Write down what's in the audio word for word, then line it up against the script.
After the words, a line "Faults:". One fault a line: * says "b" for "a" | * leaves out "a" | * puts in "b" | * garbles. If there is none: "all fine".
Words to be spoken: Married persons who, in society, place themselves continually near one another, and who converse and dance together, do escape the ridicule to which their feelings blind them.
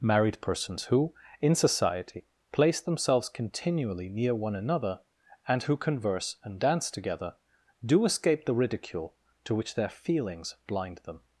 Married persons who, in society, place themselves continually near one another, and who converse and dance together, do escape the ridicule to which their feelings blind them.
Faults:
all fine